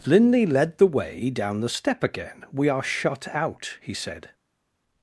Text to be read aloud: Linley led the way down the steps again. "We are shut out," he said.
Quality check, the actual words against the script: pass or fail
fail